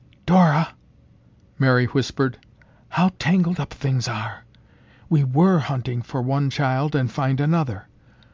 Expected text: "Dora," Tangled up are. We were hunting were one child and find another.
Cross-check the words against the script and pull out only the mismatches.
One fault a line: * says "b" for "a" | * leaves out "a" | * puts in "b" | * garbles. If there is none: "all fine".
* puts in "Mary whispered how"
* puts in "things"
* says "for" for "were"